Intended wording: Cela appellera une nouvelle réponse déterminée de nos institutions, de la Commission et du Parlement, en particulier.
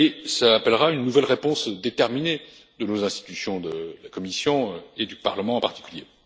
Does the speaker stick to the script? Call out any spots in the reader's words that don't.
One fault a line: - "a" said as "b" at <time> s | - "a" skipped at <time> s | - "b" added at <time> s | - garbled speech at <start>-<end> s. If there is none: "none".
none